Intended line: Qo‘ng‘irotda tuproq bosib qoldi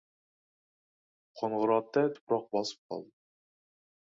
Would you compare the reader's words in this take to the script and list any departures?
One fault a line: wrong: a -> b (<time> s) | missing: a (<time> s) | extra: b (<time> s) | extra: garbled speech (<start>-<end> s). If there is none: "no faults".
no faults